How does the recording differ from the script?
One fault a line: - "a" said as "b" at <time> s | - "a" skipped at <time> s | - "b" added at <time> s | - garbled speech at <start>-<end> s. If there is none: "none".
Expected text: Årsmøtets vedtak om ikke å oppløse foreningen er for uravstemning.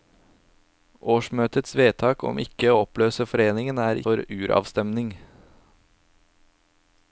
none